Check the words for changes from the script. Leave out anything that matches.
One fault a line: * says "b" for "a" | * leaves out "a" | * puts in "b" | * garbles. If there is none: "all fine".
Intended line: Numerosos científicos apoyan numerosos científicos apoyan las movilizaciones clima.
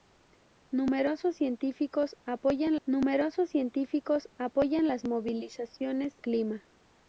all fine